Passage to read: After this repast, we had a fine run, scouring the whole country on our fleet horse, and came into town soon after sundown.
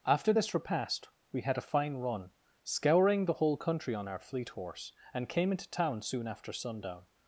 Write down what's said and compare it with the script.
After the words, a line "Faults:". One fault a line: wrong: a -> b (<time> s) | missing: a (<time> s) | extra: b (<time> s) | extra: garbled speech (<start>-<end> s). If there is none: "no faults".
After this repast, we had a fine run, scouring the whole country on our fleet horse, and came into town soon after sundown.
Faults:
no faults